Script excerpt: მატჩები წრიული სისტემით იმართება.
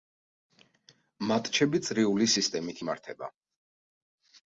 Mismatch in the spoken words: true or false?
false